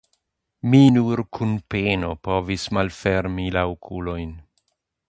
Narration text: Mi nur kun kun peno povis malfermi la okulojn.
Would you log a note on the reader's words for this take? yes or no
yes